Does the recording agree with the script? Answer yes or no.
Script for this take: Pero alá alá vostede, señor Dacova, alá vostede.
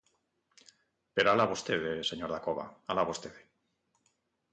no